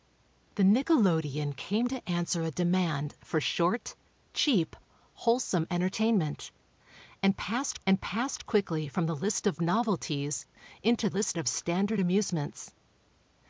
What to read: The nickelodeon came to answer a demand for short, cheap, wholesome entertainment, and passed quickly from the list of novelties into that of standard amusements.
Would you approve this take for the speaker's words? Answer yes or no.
no